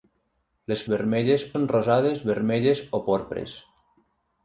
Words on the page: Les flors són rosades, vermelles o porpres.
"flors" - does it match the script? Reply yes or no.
no